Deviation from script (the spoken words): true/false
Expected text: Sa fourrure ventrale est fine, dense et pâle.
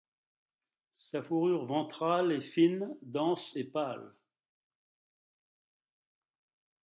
false